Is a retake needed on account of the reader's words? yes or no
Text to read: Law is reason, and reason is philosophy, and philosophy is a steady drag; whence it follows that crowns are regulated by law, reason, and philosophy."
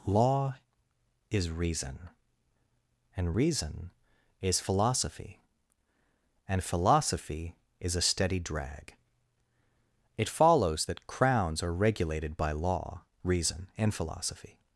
yes